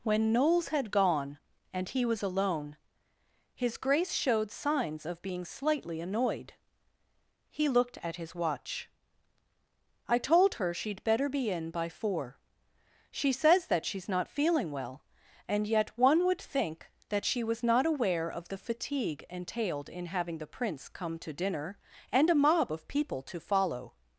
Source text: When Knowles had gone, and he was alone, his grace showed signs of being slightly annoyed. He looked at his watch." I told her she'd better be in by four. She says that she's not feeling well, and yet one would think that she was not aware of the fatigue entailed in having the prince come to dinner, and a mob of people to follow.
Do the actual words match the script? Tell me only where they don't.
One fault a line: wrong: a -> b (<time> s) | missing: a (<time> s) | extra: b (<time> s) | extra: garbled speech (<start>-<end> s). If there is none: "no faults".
no faults